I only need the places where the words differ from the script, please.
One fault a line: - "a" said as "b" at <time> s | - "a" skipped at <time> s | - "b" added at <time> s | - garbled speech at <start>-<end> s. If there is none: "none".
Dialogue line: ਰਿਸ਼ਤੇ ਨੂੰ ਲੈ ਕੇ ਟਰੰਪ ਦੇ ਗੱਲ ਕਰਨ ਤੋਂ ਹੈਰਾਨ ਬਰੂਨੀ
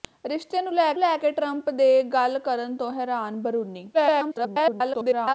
- "ਲੈ" added at 1.0 s
- garbled speech at 3.9-5.3 s